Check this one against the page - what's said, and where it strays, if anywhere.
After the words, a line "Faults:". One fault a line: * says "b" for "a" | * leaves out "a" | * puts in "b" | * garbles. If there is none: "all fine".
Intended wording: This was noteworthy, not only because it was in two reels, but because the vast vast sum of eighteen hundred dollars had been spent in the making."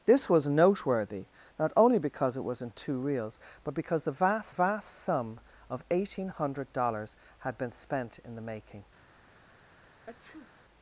This was noteworthy, not only because it was in two reels, but because the vast vast sum of eighteen hundred dollars had been spent in the making."
Faults:
all fine